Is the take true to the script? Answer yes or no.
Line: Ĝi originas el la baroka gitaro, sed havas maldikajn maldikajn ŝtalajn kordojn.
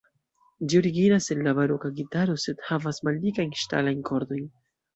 no